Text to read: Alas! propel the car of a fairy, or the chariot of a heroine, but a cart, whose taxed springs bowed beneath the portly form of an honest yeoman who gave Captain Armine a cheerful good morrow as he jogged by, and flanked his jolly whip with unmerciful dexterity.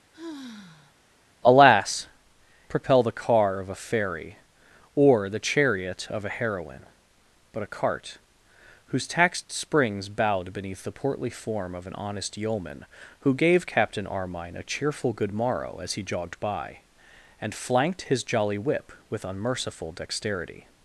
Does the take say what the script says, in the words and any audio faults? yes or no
no